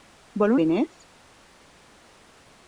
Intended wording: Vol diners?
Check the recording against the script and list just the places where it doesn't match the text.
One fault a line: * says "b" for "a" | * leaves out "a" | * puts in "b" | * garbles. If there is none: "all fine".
all fine